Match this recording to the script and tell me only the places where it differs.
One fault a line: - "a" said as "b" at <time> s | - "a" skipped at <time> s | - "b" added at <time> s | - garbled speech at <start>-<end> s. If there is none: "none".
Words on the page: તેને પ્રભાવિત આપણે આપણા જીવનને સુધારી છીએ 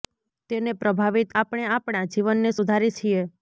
none